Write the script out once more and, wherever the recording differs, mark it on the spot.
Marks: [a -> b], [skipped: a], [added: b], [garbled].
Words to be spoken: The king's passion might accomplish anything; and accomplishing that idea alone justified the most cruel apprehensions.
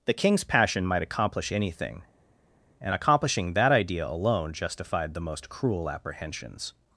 The king's passion might accomplish anything; and accomplishing that idea alone justified the most cruel apprehensions.